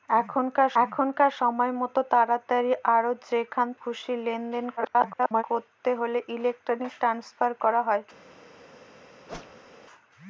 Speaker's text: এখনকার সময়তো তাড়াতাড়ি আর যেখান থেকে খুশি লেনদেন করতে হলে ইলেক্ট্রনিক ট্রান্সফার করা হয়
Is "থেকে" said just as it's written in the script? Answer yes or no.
no